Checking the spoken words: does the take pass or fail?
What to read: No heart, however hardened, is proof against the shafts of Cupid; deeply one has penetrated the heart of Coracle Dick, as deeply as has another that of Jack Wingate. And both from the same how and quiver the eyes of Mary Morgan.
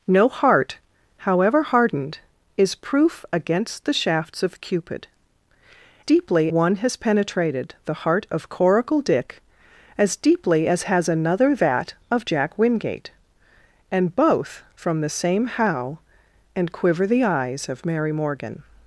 pass